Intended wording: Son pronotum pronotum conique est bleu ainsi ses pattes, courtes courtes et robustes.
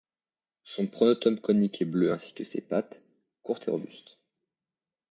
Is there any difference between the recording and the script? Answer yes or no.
yes